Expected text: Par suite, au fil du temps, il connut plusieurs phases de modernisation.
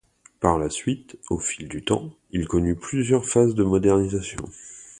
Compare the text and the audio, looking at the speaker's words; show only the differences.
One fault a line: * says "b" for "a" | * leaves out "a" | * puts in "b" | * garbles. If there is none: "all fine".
* puts in "la"